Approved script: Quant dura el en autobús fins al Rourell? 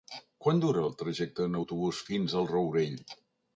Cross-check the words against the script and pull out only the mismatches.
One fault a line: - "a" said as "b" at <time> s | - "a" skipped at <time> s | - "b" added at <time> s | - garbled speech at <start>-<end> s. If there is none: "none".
- "trajecte" added at 1.0 s